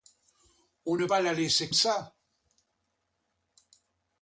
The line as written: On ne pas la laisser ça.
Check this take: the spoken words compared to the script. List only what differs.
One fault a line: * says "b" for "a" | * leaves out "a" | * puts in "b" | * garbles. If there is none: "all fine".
all fine